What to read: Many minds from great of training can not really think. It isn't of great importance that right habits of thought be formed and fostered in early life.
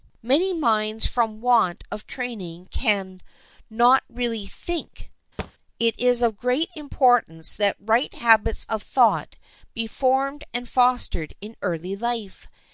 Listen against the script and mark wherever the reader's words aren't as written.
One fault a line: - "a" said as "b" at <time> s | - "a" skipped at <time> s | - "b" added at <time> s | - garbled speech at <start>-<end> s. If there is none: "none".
- "great" said as "want" at 1.4 s
- "isn't" said as "is" at 6.0 s